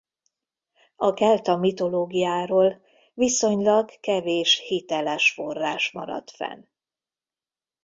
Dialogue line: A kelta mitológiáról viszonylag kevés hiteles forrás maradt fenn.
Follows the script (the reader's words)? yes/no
yes